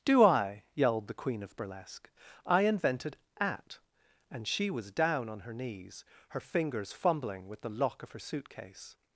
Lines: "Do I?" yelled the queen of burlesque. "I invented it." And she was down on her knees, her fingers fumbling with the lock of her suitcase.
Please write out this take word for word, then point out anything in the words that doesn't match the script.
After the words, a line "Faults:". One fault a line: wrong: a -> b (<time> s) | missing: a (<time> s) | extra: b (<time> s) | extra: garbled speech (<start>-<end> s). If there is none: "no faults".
"Do I?" yelled the queen of burlesque. "I invented at." And she was down on her knees, her fingers fumbling with the lock of her suitcase.
Faults:
wrong: it -> at (3.4 s)